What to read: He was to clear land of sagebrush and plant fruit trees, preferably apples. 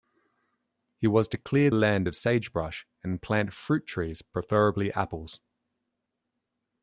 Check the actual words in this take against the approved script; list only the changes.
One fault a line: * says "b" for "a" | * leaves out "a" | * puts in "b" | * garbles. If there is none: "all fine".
all fine